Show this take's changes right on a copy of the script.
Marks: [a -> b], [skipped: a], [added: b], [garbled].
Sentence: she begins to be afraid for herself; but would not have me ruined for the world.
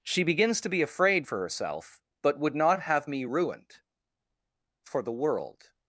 she begins to be afraid for herself; but would not have me ruined for the world.